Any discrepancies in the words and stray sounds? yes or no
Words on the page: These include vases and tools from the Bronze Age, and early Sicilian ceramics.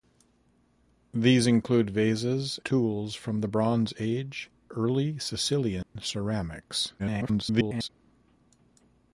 yes